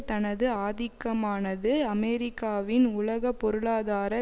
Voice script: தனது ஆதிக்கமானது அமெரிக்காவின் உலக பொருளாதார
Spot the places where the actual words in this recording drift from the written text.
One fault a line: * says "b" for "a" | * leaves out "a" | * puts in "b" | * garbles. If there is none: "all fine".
all fine